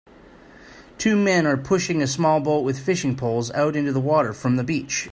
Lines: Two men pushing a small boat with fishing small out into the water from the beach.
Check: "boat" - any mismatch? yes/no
no